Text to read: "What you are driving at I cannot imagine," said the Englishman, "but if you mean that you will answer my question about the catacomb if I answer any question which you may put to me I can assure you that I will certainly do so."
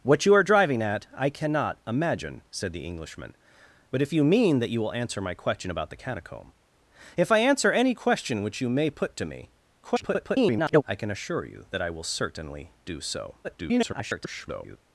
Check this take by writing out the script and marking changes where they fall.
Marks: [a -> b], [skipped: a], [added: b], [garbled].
"What you are driving at I cannot imagine," said the Englishman, "but if you mean that you will answer my question about the catacomb if I answer any question which you may put to me [garbled] I can assure you that I will certainly do so." [garbled]